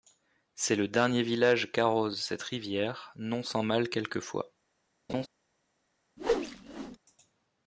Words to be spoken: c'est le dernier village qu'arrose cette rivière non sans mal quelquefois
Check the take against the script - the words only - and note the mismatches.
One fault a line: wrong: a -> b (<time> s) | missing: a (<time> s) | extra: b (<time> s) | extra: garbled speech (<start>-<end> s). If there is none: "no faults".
no faults